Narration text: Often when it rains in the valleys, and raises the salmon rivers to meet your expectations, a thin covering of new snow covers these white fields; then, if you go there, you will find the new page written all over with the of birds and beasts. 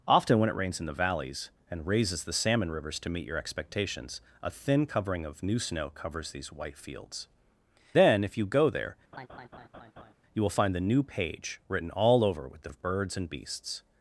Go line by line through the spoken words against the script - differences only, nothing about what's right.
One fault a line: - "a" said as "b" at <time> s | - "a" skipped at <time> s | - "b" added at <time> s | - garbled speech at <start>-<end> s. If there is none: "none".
none